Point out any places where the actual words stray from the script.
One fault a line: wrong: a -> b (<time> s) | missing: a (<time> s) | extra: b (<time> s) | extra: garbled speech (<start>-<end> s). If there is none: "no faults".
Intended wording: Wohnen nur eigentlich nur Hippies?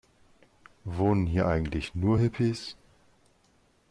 wrong: nur -> hier (1.3 s)